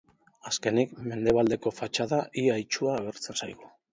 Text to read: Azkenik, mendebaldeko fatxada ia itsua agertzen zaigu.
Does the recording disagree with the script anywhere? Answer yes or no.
no